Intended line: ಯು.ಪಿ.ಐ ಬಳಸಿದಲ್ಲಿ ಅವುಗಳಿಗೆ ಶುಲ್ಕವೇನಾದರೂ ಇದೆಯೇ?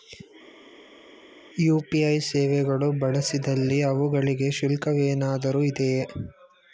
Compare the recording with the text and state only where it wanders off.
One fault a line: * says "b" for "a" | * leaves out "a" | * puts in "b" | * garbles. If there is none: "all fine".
* puts in "ಸೇವೆಗಳು"